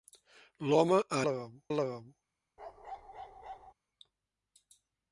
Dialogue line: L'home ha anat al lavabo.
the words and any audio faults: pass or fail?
fail